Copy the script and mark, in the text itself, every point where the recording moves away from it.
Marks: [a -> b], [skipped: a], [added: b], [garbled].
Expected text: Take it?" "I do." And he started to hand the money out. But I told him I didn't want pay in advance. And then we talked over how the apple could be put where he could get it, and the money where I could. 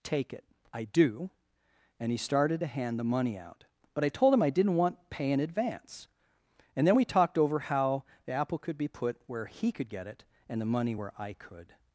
Take it?" "I do." And he started to hand the money out. But I told him I didn't want pay in advance. And then we talked over how the apple could be put where he could get it, and the money where I could.